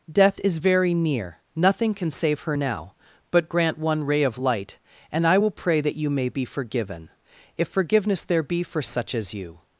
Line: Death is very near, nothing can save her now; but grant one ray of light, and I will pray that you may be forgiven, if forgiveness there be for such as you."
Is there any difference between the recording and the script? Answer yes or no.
no